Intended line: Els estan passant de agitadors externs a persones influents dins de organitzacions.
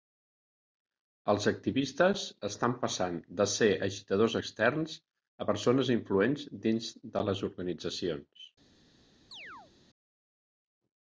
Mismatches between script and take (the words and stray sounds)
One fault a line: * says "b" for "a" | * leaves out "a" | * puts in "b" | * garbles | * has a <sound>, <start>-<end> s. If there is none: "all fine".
* puts in "activistes"
* puts in "ser"
* puts in "les"
* has a chirp, 9.3-9.7 s